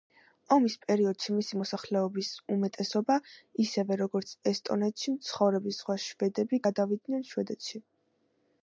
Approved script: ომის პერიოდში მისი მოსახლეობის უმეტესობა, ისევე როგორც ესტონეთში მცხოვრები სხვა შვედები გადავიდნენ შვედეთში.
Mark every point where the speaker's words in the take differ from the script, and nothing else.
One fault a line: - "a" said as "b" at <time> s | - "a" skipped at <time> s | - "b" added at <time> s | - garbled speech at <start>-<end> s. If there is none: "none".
none